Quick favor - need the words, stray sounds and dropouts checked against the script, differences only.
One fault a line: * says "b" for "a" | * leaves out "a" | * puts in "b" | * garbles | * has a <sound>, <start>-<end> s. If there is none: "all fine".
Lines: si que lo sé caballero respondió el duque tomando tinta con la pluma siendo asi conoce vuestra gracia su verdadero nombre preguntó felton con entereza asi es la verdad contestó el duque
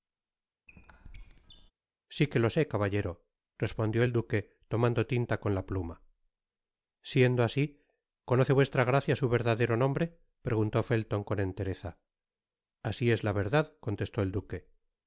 * has a squeak, 0.7-1.7 s